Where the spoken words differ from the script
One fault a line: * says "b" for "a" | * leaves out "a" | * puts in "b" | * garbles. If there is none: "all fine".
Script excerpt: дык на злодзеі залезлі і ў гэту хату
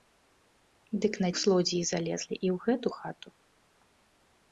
all fine